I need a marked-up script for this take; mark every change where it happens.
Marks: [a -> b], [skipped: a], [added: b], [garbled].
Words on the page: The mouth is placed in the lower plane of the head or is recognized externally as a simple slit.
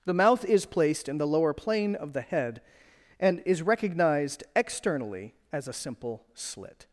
The mouth is placed in the lower plane of the head [or -> and] is recognized externally as a simple slit.